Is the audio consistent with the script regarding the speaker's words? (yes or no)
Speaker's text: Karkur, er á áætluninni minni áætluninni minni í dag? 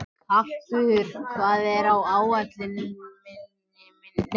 no